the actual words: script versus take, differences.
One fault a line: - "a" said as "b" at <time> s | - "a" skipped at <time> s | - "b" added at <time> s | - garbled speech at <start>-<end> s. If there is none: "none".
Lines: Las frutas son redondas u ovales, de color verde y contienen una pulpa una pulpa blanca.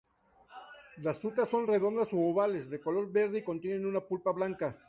- "una pulpa" skipped at 4.3 s